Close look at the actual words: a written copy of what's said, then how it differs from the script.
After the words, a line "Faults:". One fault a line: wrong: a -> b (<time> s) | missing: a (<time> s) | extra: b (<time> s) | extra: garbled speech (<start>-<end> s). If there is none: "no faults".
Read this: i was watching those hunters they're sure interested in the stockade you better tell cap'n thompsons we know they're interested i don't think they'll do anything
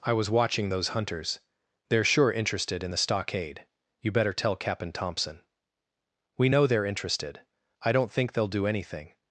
i was watching those hunters they're sure interested in the stockade you better tell cap'n thompson we know they're interested i don't think they'll do anything
Faults:
wrong: thompsons -> thompson (4.9 s)